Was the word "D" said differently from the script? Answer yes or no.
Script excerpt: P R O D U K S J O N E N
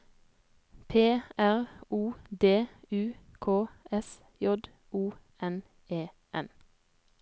no